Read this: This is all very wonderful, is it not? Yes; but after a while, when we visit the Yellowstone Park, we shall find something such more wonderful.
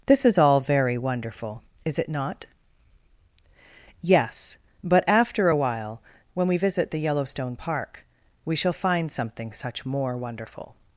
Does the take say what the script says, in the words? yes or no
yes